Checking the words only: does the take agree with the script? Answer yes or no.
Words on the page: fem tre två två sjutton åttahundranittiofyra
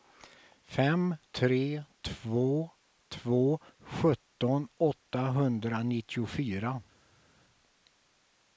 yes